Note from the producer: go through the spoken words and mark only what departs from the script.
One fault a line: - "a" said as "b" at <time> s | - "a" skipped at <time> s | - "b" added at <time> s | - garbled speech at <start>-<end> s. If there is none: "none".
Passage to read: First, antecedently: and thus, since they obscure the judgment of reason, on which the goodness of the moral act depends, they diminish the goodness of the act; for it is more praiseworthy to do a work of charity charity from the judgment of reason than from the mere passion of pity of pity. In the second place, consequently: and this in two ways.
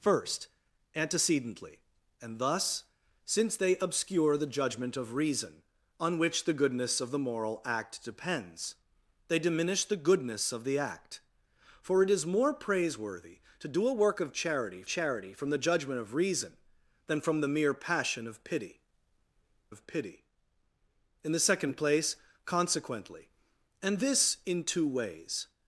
none